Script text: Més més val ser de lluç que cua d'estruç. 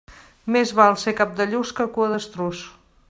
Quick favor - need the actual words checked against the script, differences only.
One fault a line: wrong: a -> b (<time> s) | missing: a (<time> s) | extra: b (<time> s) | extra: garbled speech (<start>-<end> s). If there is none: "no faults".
missing: més (0.7 s)
extra: cap (1.2 s)